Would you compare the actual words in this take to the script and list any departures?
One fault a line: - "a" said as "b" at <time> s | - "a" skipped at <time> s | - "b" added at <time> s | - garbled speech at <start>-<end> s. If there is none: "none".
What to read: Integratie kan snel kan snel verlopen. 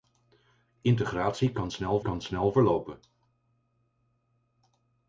none